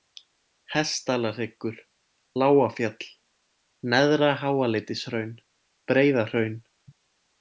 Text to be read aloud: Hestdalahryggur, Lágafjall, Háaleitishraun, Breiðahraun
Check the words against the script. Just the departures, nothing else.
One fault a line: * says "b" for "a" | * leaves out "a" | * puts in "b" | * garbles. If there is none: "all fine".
* puts in "Neðra"